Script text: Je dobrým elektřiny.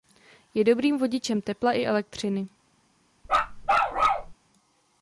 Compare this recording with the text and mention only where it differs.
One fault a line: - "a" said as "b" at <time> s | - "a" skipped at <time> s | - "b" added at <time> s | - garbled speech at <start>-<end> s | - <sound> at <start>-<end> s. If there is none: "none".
- "vodičem tepla i" added at 1.0 s
- bark at 3.2-4.3 s